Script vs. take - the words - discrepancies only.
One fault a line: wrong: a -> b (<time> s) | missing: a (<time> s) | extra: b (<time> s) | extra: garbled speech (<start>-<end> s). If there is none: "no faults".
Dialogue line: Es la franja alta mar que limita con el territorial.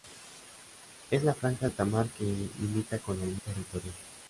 no faults